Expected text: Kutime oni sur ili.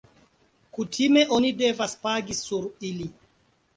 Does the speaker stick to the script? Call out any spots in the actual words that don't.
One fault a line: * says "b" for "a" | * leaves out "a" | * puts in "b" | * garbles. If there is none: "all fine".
* puts in "devas pagi"